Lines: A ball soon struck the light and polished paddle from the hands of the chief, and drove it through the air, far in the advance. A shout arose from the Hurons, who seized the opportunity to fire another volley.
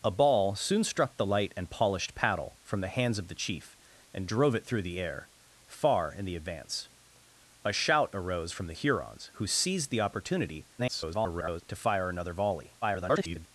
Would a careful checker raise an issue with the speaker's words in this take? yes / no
yes